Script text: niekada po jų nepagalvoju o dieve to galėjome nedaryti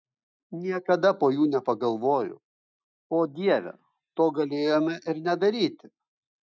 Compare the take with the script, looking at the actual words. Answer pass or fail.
fail